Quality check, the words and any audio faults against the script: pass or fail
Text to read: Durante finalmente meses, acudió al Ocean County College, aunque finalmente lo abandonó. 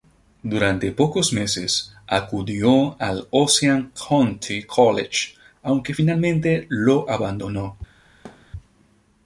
fail